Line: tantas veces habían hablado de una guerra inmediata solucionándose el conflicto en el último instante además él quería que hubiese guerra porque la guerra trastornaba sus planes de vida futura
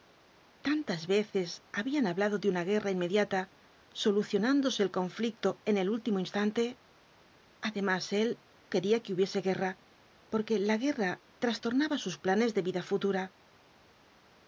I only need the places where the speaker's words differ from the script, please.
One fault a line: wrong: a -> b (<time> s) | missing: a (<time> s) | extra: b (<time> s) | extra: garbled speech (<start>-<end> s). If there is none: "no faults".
no faults